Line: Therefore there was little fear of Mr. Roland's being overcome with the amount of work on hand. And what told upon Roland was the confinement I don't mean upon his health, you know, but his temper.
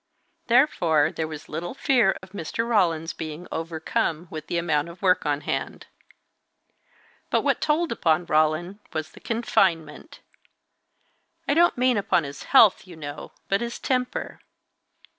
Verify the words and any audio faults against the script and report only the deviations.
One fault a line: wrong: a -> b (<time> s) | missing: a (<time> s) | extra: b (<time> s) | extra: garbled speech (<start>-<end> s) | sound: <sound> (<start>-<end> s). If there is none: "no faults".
sound: dropout (2.2-2.2 s)
wrong: And -> But (7.3 s)